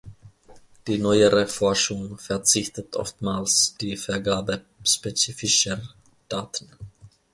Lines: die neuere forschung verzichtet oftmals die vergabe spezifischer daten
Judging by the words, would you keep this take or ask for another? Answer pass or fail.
pass